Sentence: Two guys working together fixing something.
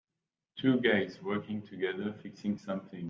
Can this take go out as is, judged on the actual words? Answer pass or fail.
pass